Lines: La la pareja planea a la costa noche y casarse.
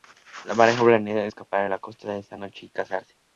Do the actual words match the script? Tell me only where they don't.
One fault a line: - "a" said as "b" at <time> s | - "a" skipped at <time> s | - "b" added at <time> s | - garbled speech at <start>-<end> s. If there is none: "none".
- "la" skipped at 0.6 s
- "escapar" added at 1.2 s
- "esa" added at 2.2 s